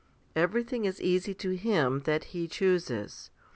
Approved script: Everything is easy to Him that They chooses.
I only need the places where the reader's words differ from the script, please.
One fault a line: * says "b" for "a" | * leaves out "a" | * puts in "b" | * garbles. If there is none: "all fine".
* says "He" for "They"